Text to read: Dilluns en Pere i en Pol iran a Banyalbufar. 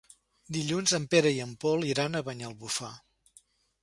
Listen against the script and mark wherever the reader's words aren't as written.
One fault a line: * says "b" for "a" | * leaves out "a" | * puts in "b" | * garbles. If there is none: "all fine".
all fine